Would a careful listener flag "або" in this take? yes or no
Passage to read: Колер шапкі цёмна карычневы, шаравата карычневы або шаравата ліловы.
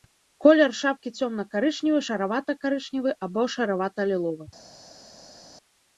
no